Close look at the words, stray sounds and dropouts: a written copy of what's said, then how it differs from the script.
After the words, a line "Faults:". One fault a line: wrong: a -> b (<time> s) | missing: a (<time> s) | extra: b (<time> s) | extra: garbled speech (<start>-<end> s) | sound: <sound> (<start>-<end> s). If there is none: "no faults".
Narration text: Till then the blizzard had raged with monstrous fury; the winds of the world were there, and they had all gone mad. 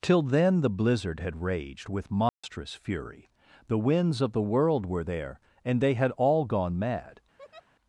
Till then the blizzard had raged with monstrous fury; the winds of the world were there, and they had all gone mad.
Faults:
sound: dropout (2.3-2.4 s)
sound: laugh (7.4-7.7 s)